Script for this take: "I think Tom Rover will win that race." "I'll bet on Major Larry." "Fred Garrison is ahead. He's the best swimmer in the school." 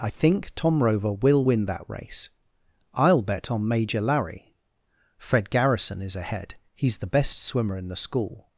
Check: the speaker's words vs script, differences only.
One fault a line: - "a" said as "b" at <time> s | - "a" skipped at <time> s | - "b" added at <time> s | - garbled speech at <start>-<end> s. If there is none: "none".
none